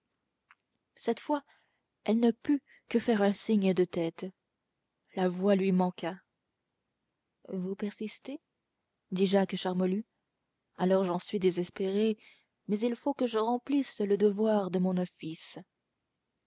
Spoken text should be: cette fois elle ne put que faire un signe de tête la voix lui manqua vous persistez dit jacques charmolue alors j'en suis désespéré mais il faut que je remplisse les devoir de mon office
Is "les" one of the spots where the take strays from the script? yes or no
yes